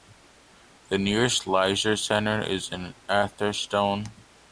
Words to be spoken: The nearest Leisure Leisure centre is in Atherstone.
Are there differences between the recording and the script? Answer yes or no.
yes